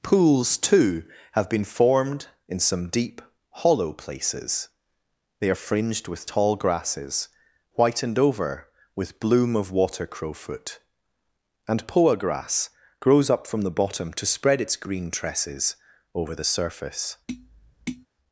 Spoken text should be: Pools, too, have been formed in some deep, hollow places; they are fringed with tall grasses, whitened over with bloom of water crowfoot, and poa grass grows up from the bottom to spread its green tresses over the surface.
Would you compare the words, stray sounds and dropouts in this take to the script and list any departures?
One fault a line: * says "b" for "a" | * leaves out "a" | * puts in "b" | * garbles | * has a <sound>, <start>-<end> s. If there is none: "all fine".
* has a tap, 17.3-18.1 s